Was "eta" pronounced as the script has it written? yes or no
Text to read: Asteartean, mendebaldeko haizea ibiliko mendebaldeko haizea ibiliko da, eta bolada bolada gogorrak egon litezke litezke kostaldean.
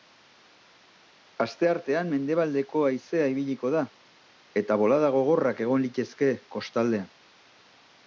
yes